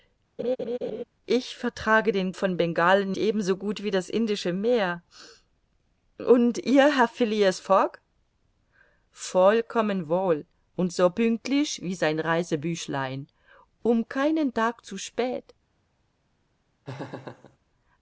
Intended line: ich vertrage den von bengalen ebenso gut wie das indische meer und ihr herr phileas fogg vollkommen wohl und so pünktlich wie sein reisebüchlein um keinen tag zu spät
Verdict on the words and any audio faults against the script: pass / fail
fail